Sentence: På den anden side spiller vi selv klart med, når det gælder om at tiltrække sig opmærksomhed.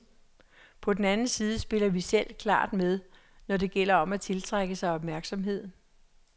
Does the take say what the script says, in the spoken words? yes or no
yes